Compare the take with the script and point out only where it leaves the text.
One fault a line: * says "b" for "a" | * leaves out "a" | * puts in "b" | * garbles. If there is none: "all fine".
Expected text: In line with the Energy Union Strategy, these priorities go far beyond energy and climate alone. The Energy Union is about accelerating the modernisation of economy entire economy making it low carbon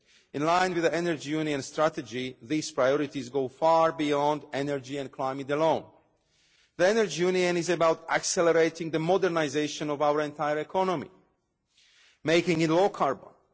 * says "our" for "economy"